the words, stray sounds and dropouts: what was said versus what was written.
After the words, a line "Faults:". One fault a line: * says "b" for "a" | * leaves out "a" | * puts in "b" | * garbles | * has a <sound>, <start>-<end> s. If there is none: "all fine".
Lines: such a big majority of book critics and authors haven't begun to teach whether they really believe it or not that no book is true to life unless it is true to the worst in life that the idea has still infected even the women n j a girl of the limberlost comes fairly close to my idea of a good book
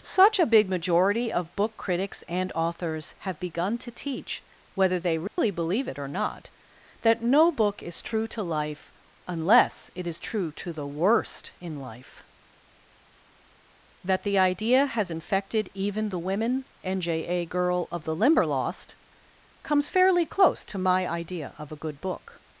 such a big majority of book critics and authors have begun to teach whether they really believe it or not that no book is true to life unless it is true to the worst in life that the idea has infected even the women n j a girl of the limberlost comes fairly close to my idea of a good book
Faults:
* says "have" for "haven't"
* has a dropout, 5.3-5.4 s
* leaves out "still"